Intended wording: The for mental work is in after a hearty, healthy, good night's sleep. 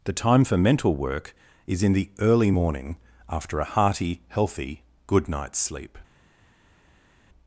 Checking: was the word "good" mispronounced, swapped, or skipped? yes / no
no